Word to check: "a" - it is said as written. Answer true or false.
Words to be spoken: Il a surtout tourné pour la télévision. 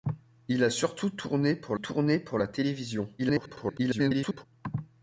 true